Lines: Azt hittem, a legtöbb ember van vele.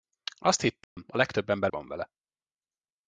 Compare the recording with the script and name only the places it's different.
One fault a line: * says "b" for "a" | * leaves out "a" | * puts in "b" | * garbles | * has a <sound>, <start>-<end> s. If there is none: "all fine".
* has a dropout, 0.8-1.0 s